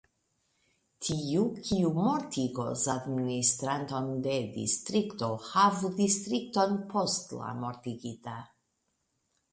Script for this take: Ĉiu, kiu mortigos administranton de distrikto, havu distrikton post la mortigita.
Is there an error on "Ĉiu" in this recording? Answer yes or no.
yes